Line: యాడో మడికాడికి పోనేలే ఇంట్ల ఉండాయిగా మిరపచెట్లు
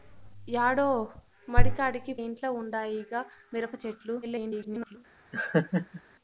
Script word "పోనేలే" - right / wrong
wrong